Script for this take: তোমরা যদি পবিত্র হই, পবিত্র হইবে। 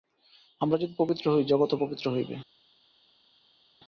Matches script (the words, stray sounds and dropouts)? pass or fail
fail